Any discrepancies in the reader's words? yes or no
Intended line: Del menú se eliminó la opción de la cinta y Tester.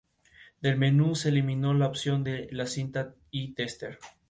no